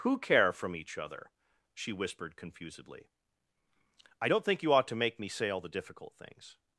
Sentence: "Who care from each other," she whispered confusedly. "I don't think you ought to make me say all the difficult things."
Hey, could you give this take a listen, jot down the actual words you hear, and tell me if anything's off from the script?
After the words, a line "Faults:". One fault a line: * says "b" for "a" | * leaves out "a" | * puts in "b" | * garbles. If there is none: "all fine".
"Who care from each other," she whispered confusedly. "I don't think you ought to make me say all the difficult things."
Faults:
all fine